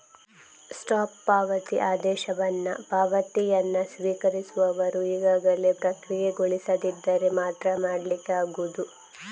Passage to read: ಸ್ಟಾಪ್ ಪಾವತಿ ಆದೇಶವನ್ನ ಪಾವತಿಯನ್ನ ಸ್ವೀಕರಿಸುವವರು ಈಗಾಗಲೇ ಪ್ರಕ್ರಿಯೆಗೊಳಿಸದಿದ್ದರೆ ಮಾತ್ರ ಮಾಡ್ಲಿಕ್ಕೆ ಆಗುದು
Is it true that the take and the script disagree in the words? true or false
false